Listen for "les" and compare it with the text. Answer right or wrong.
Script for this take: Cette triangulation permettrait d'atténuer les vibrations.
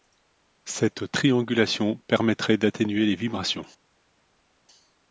right